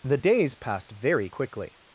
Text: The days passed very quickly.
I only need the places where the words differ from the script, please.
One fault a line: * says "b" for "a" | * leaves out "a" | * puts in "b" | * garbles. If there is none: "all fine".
all fine